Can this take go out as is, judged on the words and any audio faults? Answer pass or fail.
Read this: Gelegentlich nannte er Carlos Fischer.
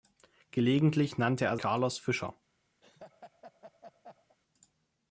fail